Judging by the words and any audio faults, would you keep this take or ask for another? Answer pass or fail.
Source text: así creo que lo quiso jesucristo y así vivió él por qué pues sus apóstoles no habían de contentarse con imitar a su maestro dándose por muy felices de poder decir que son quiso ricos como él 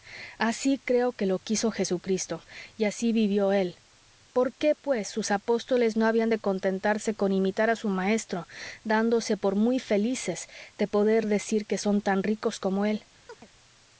fail